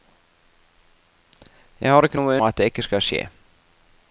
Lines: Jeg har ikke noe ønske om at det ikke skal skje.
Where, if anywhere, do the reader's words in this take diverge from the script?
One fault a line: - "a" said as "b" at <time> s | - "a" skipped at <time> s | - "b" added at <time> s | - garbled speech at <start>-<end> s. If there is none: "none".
- "ønske om" skipped at 2.4 s